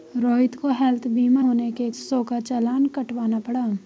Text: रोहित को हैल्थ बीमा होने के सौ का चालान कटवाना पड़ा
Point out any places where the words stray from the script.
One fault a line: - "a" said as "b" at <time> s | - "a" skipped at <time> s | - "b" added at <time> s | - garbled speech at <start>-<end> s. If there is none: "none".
none